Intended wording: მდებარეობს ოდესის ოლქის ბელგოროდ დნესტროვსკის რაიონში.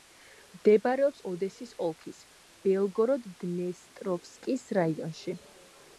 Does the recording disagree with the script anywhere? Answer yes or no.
no